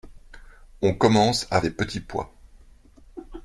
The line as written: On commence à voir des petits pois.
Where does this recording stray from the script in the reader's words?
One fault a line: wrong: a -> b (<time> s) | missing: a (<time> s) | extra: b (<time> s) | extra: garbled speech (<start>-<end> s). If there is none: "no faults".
missing: voir (1.6 s)